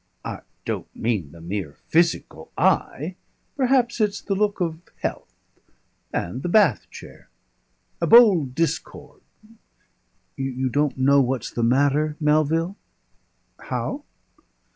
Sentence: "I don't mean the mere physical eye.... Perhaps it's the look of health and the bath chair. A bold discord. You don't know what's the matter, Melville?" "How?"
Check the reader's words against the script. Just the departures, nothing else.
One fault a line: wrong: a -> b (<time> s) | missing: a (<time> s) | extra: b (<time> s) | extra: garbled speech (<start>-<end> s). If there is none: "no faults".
no faults